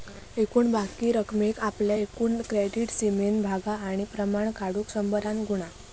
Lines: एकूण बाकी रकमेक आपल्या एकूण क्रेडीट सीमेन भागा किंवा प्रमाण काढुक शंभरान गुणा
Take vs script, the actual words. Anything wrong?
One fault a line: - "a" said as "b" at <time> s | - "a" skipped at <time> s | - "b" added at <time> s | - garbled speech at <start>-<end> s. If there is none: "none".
- "किंवा" said as "आणि" at 3.8 s